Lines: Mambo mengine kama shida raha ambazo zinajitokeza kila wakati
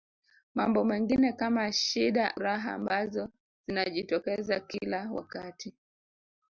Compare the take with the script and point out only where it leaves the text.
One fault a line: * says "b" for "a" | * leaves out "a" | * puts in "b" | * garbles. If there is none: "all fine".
all fine